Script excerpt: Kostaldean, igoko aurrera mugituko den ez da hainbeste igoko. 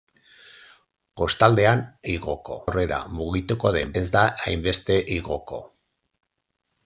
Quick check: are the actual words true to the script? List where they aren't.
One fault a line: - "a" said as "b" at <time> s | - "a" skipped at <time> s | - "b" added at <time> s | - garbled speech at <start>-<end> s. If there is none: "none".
none